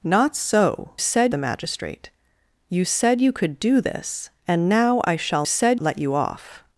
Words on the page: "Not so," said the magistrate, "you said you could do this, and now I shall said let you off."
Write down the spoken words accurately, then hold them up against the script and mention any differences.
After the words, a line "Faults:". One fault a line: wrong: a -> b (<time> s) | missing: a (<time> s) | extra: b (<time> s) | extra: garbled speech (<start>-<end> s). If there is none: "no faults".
"Not so," said the magistrate, "you said you could do this, and now I shall said let you off."
Faults:
no faults